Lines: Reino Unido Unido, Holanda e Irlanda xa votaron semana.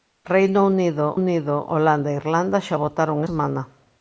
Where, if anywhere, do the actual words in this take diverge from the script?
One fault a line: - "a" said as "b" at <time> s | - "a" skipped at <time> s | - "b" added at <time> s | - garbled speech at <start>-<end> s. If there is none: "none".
none